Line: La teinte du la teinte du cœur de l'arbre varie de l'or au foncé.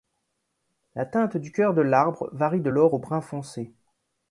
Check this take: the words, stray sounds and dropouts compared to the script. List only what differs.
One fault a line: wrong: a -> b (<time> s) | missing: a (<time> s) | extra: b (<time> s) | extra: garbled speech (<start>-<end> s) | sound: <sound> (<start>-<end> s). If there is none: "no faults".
missing: la teinte du (1.5 s)
extra: brun (3.0 s)